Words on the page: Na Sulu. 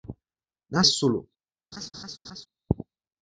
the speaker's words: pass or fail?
pass